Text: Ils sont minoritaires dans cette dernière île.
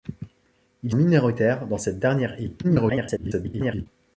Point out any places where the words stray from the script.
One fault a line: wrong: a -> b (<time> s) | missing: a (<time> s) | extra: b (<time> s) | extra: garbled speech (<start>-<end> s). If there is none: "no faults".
missing: sont (0.9 s)
extra: garbled speech (2.6-3.9 s)